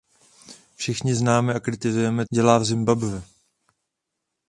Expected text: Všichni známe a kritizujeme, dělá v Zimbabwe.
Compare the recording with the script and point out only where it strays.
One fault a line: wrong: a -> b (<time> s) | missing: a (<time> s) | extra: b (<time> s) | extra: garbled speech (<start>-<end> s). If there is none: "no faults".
no faults